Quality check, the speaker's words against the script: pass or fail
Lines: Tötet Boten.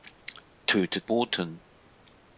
pass